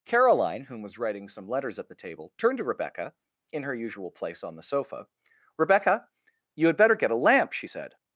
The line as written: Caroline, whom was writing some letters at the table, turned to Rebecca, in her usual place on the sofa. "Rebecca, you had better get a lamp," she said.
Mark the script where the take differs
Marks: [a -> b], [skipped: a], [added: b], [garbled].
Caroline, whom was writing some letters at the table, turned to Rebecca, in her usual place on the sofa. "Rebecca, you had better get a lamp," she said.